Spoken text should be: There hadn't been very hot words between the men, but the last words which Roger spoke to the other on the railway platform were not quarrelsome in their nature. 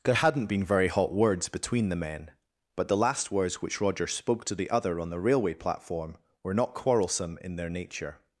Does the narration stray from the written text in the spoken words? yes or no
no